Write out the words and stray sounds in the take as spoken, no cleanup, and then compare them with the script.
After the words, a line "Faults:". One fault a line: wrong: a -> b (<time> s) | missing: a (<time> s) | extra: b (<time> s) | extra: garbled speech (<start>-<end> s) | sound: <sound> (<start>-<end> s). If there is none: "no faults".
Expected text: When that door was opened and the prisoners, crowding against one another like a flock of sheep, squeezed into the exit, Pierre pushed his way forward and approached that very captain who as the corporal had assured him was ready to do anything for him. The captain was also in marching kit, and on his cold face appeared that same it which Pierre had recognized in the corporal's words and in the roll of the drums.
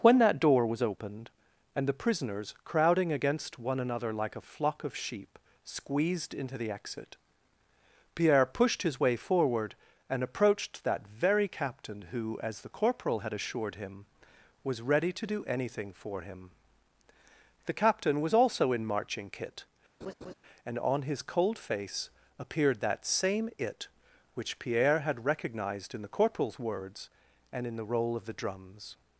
When that door was opened and the prisoners, crowding against one another like a flock of sheep, squeezed into the exit, Pierre pushed his way forward and approached that very captain who as the corporal had assured him was ready to do anything for him. The captain was also in marching kit, and on his cold face appeared that same it which Pierre had recognized in the corporal's words and in the roll of the drums.
Faults:
sound: laugh (20.0-20.3 s)